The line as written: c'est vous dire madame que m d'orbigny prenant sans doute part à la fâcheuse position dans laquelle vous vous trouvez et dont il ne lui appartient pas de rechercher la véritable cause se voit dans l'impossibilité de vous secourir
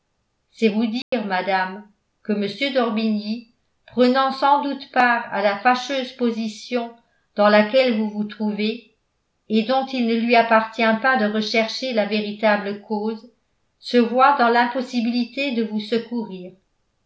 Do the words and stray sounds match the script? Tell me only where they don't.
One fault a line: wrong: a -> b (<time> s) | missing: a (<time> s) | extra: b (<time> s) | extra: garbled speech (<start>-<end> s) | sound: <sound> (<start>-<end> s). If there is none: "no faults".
sound: dropout (1.0-1.1 s)